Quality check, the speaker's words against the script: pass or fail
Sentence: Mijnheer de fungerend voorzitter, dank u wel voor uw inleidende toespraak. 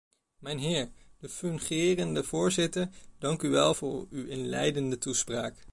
pass